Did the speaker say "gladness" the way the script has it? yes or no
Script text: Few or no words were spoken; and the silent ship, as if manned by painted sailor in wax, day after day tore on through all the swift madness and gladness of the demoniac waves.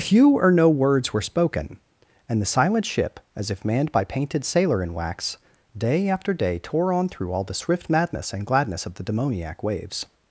yes